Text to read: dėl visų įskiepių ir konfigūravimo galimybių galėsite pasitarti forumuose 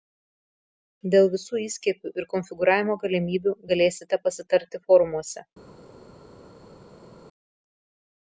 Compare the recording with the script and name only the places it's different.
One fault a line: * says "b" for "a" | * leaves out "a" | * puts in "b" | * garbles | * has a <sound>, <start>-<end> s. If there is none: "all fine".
all fine